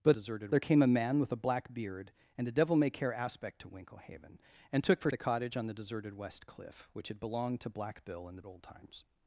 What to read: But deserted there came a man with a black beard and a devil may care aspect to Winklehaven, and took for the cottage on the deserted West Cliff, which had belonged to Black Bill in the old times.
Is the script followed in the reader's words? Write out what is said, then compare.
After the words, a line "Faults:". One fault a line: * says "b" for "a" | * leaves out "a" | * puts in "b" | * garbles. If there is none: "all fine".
But deserted there came a man with a black beard and a devil may care aspect to Winklehaven, and took for the cottage on the deserted West Cliff, which had belonged to Black Bill in the old times.
Faults:
all fine